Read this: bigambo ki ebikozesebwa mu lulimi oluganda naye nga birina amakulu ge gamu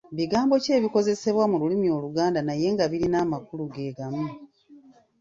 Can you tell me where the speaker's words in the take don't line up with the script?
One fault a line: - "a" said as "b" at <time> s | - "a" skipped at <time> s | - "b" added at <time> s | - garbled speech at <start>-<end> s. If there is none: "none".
none